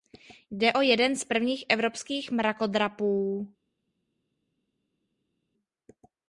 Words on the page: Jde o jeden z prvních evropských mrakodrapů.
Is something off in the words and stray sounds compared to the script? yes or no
no